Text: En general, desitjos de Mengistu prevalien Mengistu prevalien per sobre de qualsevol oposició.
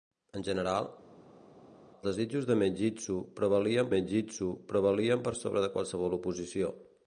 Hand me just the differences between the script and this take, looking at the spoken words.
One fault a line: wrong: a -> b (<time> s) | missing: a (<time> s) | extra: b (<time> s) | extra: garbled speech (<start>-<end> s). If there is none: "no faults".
no faults